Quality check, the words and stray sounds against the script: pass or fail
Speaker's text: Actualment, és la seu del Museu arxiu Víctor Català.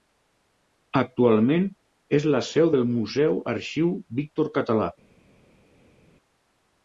pass